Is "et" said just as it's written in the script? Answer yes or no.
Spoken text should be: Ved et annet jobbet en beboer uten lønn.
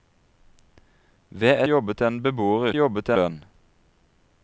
no